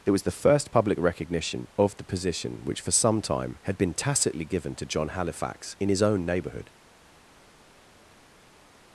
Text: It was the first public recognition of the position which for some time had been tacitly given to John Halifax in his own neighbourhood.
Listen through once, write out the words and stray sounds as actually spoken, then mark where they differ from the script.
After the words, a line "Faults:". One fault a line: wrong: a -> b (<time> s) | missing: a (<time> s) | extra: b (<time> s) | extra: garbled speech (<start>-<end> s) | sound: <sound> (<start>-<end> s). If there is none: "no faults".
It was the first public recognition of the position which for some time had been tacitly given to John Halifax in his own neighbourhood.
Faults:
no faults